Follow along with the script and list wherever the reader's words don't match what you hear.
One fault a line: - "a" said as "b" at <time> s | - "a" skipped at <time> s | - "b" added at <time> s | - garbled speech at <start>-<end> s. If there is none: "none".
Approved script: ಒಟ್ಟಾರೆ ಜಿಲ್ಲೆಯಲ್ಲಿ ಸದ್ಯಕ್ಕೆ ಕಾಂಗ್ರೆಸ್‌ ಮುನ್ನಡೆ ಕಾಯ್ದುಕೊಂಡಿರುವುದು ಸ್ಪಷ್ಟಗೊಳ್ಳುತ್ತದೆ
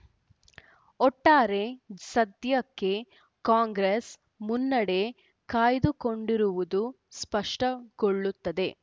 - "ಜಿಲ್ಲೆಯಲ್ಲಿ" skipped at 1.6 s